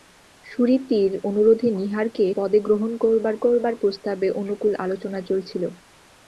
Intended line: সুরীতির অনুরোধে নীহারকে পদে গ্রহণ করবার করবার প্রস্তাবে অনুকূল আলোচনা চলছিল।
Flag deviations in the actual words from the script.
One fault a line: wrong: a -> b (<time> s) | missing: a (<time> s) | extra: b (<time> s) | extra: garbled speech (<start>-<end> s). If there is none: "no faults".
no faults